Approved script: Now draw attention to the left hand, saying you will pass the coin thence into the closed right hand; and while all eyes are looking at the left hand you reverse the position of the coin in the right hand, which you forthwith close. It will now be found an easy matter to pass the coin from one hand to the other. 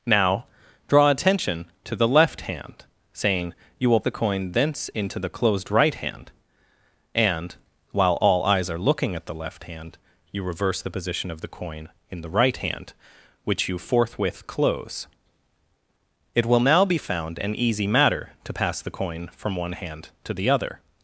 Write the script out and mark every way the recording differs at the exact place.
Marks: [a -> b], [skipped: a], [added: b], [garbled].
Now draw attention to the left hand, saying you will [skipped: pass] the coin thence into the closed right hand; and while all eyes are looking at the left hand you reverse the position of the coin in the right hand, which you forthwith close. It will now be found an easy matter to pass the coin from one hand to the other.